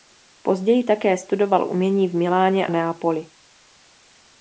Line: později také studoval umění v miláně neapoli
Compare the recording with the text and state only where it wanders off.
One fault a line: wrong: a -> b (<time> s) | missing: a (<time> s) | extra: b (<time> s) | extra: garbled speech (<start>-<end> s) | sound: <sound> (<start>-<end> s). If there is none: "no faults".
no faults